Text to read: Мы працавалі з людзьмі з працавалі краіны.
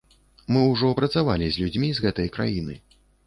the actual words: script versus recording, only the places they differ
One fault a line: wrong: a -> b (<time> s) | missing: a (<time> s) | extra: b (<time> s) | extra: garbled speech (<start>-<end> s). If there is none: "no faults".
extra: ўжо (0.7 s)
wrong: працавалі -> гэтай (2.0 s)